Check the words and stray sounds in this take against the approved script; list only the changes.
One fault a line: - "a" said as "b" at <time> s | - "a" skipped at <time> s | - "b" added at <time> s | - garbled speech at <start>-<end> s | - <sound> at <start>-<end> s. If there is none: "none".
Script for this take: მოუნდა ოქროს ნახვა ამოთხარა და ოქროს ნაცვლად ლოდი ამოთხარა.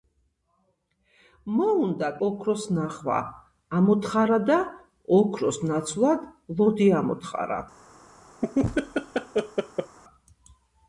- laugh at 8.4-10.0 s